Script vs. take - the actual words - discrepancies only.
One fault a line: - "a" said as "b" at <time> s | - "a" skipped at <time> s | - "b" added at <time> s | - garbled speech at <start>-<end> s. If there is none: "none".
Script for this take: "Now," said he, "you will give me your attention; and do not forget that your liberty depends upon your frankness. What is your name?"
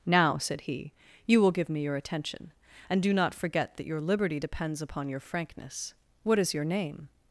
none